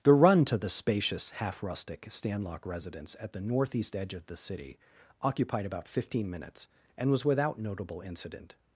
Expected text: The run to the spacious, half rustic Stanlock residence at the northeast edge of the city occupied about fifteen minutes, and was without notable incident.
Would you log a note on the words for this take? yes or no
no